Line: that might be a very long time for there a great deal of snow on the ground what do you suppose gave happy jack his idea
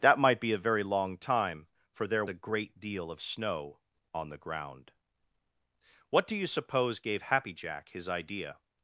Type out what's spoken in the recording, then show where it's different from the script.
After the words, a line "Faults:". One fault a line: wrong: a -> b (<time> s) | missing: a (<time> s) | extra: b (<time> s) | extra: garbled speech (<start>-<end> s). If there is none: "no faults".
that might be a very long time for there a great deal of snow on the ground what do you suppose gave happy jack his idea
Faults:
no faults